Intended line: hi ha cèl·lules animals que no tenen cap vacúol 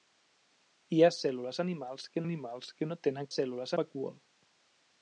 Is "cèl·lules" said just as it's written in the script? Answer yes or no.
yes